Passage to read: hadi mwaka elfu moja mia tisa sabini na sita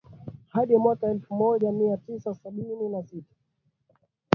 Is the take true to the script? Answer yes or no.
yes